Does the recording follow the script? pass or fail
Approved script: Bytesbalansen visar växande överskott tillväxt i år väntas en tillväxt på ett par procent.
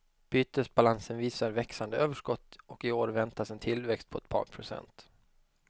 fail